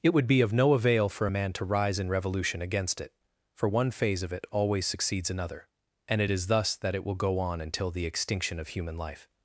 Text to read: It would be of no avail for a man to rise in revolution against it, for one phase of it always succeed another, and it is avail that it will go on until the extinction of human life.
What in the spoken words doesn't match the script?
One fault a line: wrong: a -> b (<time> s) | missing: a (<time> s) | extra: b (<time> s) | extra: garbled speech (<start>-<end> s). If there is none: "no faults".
wrong: succeed -> succeeds (4.9 s)
wrong: avail -> thus (6.5 s)